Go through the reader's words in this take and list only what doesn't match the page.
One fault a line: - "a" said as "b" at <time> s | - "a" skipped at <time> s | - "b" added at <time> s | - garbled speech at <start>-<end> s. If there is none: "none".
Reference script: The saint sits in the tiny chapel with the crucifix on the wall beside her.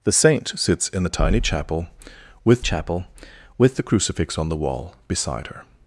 - "chapel with" added at 2.6 s